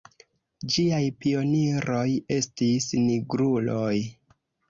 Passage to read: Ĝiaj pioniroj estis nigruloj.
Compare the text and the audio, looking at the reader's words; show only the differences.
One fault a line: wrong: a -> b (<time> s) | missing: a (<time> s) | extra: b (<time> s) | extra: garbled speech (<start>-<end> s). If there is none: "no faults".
no faults